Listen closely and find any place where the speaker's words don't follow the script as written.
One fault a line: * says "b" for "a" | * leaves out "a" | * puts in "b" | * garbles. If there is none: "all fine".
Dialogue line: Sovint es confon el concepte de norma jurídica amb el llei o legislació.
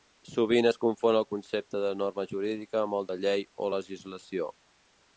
* puts in "de"